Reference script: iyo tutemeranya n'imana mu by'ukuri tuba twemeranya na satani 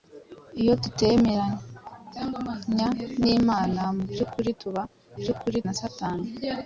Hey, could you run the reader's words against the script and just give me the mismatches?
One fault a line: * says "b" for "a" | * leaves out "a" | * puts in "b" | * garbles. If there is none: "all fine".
* says "by'ukuri" for "twemeranya"